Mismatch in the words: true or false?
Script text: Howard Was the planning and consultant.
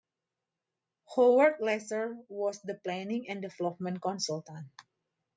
true